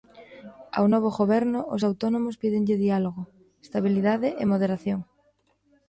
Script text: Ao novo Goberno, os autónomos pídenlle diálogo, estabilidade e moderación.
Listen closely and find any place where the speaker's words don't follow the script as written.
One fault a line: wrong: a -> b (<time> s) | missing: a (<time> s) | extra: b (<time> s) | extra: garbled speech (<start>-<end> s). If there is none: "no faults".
no faults